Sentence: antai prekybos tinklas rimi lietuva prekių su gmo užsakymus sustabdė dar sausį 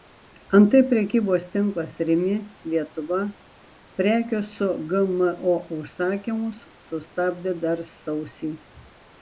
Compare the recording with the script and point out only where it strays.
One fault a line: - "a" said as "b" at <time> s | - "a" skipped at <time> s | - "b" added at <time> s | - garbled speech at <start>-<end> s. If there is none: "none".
none